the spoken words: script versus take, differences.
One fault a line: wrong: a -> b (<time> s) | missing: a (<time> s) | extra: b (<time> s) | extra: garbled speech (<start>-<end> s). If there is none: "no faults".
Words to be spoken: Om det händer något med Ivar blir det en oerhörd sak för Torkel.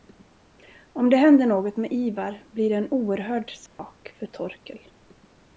no faults